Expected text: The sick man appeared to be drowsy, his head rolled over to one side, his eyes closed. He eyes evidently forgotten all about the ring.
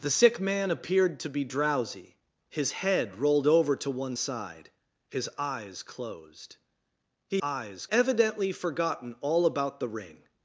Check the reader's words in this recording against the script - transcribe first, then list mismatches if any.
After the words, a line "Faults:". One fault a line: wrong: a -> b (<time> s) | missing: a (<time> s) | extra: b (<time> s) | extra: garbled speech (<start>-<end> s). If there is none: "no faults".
The sick man appeared to be drowsy, his head rolled over to one side, his eyes closed. He eyes evidently forgotten all about the ring.
Faults:
no faults